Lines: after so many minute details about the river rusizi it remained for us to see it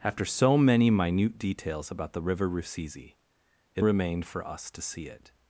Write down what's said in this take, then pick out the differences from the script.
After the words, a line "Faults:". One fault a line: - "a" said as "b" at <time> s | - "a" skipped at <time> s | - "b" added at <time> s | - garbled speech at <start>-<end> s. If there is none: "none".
after so many minute details about the river rusizi it remained for us to see it
Faults:
none